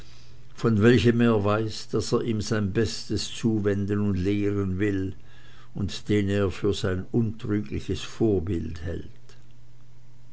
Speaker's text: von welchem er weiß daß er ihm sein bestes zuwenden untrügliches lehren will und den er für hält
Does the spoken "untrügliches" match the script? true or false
false